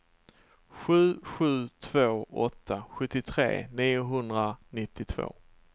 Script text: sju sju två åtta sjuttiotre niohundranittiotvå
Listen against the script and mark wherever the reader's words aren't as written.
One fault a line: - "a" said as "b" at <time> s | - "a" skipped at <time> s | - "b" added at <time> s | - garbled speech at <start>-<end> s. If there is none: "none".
none